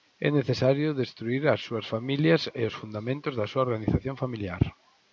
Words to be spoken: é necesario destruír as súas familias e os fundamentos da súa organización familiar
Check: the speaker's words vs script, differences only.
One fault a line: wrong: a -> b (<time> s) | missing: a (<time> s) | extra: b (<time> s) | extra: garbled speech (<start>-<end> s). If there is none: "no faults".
no faults